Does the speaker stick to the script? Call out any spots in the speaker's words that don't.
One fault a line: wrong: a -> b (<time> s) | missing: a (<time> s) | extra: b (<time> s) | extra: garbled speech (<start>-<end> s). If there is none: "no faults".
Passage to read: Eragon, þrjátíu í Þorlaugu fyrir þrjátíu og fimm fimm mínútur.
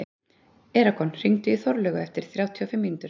wrong: þrjátíu -> hringdu (1.2 s)
wrong: fyrir -> eftir (2.0 s)
missing: fimm (2.9 s)